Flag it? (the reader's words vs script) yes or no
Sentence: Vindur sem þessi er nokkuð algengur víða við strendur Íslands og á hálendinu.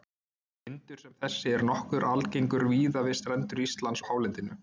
yes